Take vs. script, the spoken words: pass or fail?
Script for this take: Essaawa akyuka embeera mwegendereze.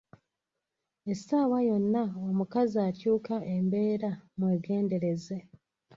fail